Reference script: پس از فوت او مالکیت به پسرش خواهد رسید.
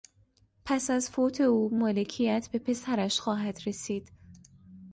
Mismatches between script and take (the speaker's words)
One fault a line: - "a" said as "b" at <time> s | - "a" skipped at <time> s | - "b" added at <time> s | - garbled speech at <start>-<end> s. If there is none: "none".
none